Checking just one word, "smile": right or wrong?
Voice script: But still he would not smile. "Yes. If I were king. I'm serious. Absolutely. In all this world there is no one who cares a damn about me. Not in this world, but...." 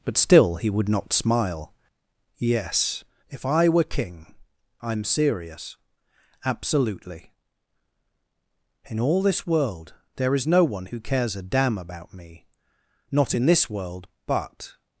right